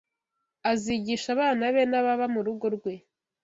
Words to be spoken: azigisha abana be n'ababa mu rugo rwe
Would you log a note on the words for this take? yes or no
no